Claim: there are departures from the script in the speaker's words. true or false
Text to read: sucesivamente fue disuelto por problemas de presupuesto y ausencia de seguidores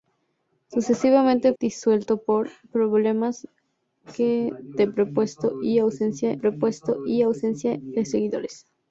true